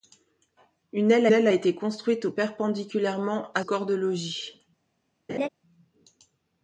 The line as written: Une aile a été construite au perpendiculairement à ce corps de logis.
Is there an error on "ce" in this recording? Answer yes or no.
yes